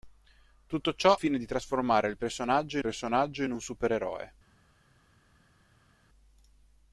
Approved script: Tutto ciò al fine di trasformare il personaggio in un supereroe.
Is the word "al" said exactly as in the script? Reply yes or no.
no